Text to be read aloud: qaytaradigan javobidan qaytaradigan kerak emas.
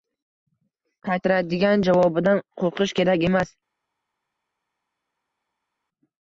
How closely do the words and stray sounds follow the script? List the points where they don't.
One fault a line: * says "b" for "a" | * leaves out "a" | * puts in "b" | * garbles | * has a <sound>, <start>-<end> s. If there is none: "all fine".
* says "qo‘rqish" for "qaytaradigan"